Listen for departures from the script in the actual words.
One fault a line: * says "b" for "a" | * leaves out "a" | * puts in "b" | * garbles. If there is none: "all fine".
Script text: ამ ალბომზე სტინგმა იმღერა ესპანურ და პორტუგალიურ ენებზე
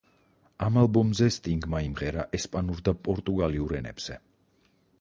all fine